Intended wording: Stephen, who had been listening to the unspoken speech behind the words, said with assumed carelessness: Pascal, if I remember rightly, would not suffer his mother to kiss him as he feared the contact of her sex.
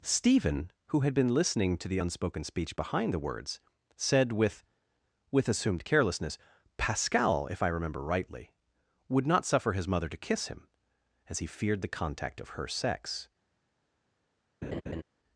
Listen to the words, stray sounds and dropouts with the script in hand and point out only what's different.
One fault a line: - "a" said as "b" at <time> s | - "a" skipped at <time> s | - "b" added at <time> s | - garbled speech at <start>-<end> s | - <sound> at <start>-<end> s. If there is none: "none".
- "with" added at 5.3 s
- laugh at 14.6-15.0 s